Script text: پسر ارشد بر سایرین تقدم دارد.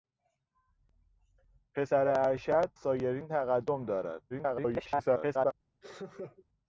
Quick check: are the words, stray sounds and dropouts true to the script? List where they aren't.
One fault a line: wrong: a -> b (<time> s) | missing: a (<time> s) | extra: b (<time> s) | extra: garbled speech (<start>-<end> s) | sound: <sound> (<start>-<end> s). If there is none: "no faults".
missing: بر (2.7 s)
extra: garbled speech (4.3-5.5 s)
sound: laugh (5.8-6.5 s)